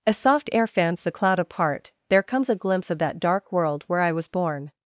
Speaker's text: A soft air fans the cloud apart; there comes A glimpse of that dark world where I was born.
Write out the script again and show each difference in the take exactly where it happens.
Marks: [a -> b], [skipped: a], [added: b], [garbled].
A soft air fans the cloud apart; there comes A glimpse of that dark world where I was born.